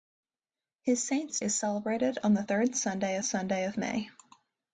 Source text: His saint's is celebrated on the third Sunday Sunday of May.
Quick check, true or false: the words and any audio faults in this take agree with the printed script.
true